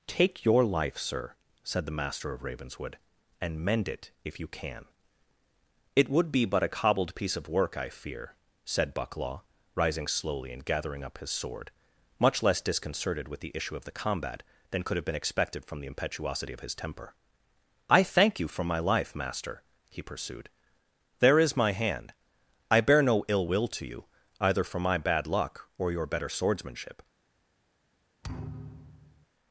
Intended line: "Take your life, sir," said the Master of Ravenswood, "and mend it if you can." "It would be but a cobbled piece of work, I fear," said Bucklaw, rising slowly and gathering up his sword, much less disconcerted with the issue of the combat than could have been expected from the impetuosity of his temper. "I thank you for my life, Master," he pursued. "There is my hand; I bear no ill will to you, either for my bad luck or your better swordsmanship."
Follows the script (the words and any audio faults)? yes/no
no